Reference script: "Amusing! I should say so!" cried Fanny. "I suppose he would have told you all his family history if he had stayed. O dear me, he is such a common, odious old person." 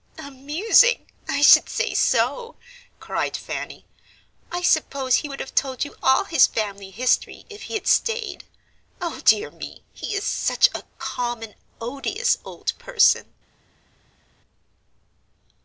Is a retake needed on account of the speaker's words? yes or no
no